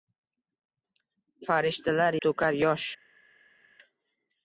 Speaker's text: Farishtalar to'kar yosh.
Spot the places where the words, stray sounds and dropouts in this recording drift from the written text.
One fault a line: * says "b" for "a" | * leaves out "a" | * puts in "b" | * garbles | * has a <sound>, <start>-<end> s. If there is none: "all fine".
all fine